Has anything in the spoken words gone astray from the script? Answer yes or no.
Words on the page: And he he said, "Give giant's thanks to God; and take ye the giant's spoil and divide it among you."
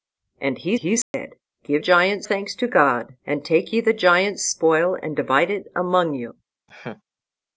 no